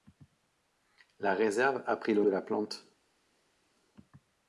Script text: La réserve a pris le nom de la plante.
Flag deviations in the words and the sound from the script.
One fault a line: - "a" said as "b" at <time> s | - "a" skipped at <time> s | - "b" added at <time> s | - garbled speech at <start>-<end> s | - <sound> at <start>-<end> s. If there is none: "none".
- "nom" skipped at 2.2 s